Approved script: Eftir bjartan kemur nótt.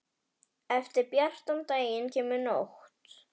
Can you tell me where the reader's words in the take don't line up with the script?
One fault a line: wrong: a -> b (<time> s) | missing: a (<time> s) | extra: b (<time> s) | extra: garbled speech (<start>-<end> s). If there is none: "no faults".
extra: daginn (1.7 s)